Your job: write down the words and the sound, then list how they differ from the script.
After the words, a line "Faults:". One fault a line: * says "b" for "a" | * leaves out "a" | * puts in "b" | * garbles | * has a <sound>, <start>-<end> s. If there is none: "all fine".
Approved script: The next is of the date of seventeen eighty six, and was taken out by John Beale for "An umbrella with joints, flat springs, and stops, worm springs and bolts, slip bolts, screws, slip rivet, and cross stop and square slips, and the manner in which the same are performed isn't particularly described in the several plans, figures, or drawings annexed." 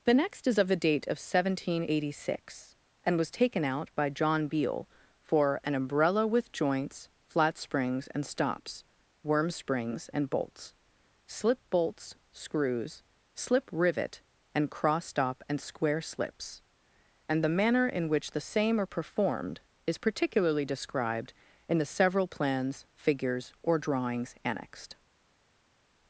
The next is of the date of seventeen eighty six, and was taken out by John Beale for "An umbrella with joints, flat springs, and stops, worm springs and bolts, slip bolts, screws, slip rivet, and cross stop and square slips, and the manner in which the same are performed is particularly described in the several plans, figures, or drawings annexed."
Faults:
* says "is" for "isn't"